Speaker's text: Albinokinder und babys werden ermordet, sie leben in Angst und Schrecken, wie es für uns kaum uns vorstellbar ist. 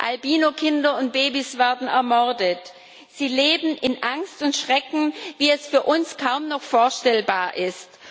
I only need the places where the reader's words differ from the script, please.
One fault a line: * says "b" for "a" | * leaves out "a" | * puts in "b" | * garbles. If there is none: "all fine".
* says "noch" for "uns"